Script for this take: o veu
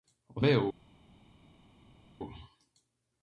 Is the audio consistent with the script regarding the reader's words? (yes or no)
yes